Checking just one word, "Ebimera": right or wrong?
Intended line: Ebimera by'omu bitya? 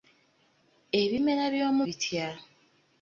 right